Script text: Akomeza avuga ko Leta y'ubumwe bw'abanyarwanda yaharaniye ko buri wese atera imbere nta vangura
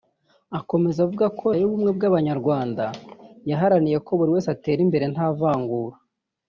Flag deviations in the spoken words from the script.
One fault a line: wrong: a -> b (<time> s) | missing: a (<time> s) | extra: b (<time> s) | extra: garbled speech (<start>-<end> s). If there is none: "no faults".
missing: Leta (1.5 s)